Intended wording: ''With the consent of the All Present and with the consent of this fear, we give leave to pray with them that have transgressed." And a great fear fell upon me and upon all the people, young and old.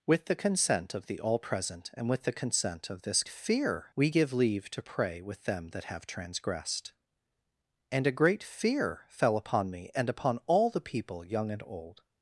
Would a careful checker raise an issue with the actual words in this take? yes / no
no